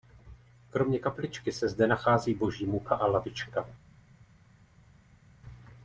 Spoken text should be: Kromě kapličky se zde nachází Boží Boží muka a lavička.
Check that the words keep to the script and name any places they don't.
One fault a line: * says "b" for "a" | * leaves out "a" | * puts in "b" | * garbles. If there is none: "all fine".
* leaves out "Boží"